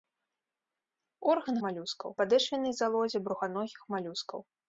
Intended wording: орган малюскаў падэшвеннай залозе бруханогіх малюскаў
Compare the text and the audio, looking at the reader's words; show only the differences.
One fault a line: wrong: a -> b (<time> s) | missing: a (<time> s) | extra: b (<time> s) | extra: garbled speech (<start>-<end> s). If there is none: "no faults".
no faults